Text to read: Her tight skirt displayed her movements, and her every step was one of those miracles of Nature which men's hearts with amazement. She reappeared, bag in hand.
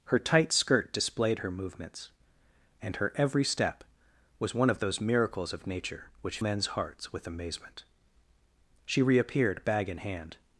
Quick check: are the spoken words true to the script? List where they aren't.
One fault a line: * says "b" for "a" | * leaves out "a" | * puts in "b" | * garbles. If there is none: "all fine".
all fine